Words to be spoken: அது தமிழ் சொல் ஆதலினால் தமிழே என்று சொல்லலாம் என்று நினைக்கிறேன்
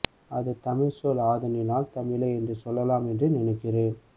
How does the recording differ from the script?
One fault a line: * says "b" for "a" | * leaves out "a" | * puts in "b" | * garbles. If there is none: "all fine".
all fine